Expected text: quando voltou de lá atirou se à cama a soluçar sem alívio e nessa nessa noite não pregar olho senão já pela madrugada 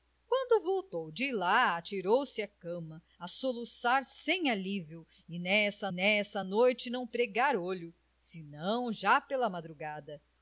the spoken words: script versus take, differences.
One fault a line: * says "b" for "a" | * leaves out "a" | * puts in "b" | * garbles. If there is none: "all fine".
all fine